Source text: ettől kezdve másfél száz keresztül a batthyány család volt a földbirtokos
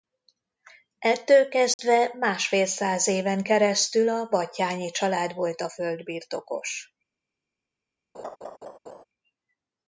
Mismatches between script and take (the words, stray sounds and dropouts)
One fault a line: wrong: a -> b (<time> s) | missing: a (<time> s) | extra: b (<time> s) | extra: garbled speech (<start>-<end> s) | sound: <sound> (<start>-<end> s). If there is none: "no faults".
sound: dropout (1.7-1.8 s)
extra: éven (3.1 s)
sound: laugh (8.1-9.0 s)